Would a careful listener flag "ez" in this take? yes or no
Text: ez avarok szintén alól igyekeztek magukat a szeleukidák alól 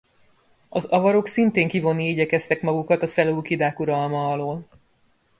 yes